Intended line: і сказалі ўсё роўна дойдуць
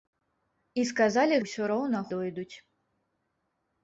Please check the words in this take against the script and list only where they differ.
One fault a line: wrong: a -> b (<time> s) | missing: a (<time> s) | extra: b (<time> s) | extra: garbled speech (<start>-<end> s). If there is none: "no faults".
no faults